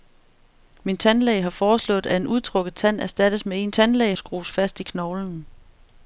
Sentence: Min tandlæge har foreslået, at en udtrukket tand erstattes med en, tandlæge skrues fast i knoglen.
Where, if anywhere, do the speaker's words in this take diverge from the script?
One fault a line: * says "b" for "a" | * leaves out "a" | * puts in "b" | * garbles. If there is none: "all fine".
all fine